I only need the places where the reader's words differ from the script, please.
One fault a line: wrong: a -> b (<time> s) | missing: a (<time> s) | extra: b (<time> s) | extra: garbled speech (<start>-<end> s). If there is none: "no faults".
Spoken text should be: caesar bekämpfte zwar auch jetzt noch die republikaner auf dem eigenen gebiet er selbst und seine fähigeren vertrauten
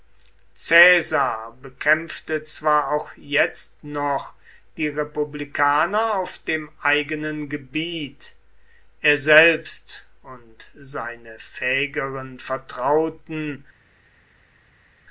no faults